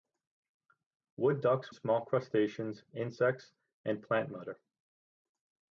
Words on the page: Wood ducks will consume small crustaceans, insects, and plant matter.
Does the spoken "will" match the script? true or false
false